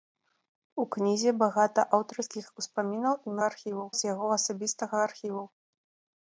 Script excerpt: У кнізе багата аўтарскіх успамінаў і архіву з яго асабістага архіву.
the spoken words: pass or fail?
pass